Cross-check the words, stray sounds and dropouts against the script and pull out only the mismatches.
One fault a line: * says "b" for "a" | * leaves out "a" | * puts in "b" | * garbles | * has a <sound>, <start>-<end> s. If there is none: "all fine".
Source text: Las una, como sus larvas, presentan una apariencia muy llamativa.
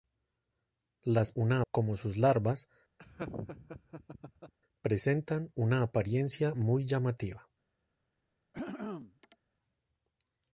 * has a laugh, 3.0-4.5 s
* has a throat clearing, 8.5-9.4 s